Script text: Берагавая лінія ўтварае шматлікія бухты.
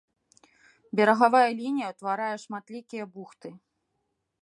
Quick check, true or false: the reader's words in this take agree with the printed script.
true